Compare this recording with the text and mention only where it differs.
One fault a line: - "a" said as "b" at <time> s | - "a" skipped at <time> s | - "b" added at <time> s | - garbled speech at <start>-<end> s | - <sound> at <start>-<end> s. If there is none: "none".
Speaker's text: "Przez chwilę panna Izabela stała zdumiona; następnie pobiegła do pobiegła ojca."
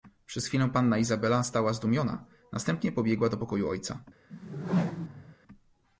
- "pobiegła" said as "pokoju" at 3.4 s
- whoosh at 4.3-5.4 s